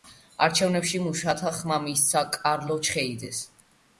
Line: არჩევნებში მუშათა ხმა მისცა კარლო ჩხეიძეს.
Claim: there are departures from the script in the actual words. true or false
false